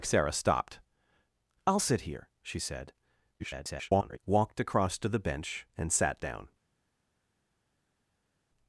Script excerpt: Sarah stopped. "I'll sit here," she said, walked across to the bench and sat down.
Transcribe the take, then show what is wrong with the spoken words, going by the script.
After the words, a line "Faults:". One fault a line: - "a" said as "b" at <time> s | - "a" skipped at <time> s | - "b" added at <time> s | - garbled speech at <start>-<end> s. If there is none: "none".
Sarah stopped. "I'll sit here," she said, [garbled] walked across to the bench and sat down.
Faults:
- garbled speech at 3.4-4.2 s